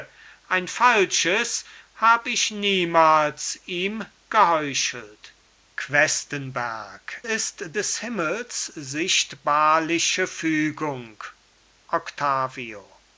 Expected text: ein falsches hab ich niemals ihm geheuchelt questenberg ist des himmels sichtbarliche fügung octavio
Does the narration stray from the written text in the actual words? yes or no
no